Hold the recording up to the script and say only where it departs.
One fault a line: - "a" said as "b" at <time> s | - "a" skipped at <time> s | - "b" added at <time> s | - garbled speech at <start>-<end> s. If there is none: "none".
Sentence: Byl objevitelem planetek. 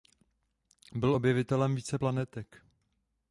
- "více" added at 1.8 s